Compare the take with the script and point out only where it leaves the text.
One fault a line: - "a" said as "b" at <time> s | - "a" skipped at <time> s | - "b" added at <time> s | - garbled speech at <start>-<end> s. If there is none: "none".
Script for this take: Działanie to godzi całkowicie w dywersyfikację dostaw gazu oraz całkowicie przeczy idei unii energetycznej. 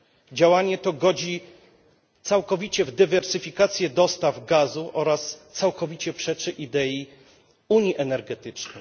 none